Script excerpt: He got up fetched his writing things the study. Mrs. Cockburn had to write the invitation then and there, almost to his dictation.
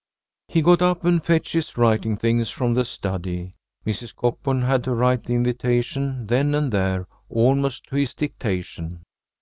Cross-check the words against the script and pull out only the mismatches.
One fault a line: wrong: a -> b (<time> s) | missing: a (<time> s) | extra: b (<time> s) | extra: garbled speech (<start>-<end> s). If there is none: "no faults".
extra: and (1.1 s)
extra: from (2.5 s)